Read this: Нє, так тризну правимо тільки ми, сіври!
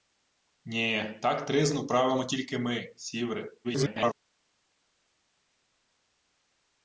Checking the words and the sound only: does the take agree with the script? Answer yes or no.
no